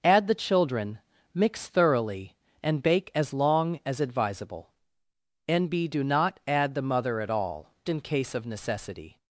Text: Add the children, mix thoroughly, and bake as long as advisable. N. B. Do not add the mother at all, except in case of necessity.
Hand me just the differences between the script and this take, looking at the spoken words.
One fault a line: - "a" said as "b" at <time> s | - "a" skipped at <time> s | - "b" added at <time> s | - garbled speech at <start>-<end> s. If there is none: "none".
- "except" skipped at 7.7 s